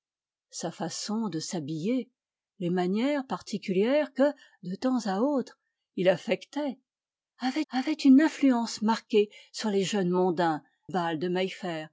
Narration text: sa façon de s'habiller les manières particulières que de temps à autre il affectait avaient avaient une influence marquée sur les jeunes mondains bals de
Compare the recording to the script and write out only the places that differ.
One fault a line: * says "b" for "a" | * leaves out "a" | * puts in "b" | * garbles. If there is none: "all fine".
all fine